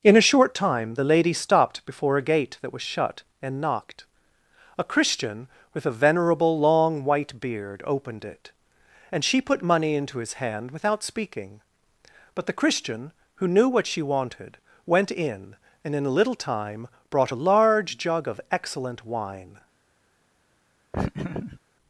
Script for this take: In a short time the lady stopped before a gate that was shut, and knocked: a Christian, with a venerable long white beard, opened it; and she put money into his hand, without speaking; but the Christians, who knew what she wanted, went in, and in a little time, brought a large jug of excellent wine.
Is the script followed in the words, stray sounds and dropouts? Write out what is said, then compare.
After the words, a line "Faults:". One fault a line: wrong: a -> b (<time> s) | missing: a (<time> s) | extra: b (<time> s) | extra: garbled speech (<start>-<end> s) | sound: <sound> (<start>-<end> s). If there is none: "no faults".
In a short time the lady stopped before a gate that was shut, and knocked: a Christian, with a venerable long white beard, opened it; and she put money into his hand, without speaking; but the Christian, who knew what she wanted, went in, and in a little time, brought a large jug of excellent wine.
Faults:
wrong: Christians -> Christian (12.5 s)
sound: laugh (20.9-21.6 s)